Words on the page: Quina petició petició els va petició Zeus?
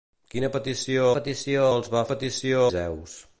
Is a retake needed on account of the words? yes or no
no